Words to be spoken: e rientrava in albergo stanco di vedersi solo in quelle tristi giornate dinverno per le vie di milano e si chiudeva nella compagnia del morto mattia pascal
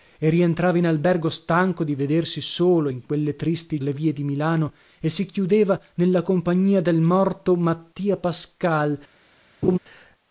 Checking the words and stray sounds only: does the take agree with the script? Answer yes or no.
no